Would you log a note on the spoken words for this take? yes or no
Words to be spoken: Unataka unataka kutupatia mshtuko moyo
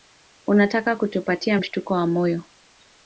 yes